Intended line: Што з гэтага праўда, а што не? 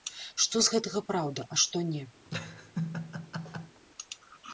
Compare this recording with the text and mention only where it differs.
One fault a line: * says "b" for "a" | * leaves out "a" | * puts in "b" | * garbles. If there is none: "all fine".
all fine